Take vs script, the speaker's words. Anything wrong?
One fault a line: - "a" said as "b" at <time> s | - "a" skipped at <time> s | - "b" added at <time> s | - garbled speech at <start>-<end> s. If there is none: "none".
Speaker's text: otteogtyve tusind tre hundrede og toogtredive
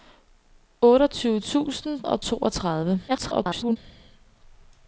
- "tre hundrede" skipped at 2.0 s
- garbled speech at 3.1-3.8 s